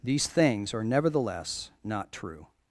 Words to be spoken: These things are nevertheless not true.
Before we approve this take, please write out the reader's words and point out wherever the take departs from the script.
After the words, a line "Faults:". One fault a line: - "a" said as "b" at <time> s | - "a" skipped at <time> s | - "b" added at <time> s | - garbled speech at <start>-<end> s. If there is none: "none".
These things are nevertheless not true.
Faults:
none